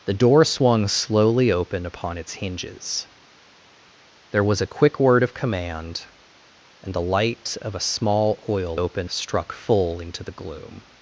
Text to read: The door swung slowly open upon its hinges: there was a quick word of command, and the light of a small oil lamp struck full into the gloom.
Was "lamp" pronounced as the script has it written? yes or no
no